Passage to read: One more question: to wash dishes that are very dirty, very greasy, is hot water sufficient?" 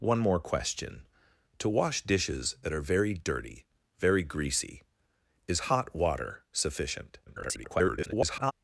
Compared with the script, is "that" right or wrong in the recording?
right